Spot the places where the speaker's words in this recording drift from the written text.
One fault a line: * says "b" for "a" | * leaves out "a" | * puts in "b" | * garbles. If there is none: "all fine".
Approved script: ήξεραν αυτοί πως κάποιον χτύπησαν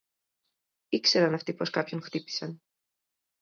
all fine